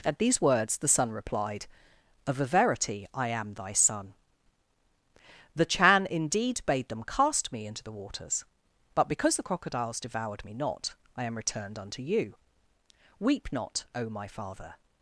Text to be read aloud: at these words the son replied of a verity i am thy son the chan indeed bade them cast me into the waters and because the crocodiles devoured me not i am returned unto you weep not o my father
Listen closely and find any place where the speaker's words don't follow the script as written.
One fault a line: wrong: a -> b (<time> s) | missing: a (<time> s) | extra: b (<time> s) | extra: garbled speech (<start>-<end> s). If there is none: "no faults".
wrong: and -> but (8.9 s)